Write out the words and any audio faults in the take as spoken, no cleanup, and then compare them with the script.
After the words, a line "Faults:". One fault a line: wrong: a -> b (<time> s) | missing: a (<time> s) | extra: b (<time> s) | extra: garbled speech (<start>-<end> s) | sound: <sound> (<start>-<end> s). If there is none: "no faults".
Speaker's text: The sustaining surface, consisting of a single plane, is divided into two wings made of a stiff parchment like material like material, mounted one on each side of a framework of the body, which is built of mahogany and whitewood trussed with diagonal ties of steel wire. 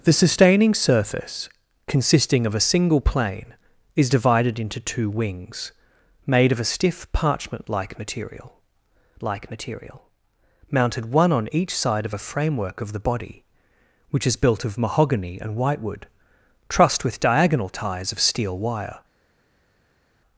The sustaining surface, consisting of a single plane, is divided into two wings made of a stiff parchment like material like material, mounted one on each side of a framework of the body, which is built of mahogany and whitewood trussed with diagonal ties of steel wire.
Faults:
no faults